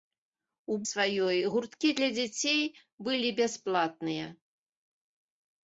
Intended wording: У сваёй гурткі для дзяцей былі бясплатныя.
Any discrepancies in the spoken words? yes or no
no